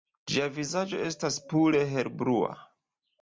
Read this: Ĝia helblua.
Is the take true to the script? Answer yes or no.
no